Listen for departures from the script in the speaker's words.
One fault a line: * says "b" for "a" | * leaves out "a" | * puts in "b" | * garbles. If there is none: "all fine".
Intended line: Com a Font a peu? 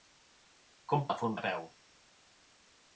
all fine